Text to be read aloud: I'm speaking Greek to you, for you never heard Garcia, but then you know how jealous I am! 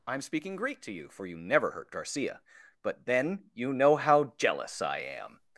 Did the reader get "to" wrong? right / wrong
right